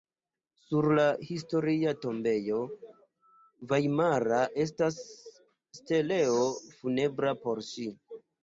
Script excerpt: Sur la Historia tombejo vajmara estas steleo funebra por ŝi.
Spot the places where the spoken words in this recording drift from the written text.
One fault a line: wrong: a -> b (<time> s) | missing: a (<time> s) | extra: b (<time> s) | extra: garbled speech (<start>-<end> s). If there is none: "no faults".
no faults